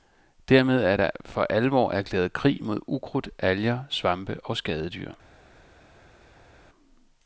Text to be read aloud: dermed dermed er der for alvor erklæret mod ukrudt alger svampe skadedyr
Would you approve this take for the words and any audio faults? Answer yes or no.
no